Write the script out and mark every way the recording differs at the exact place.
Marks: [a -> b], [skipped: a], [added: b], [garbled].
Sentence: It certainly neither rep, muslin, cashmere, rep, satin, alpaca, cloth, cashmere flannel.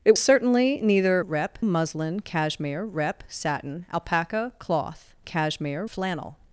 It certainly neither rep, muslin, cashmere, rep, satin, alpaca, cloth, cashmere flannel.